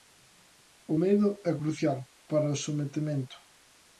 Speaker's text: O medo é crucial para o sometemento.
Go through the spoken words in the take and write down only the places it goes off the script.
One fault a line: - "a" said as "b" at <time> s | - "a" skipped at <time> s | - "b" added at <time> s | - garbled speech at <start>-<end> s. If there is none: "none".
none